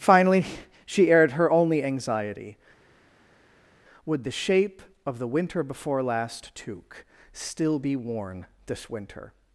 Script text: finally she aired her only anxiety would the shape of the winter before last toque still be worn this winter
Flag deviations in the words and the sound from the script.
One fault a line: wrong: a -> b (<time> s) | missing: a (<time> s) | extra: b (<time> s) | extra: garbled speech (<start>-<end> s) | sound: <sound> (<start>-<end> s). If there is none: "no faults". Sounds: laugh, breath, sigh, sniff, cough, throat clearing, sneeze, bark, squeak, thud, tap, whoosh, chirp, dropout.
no faults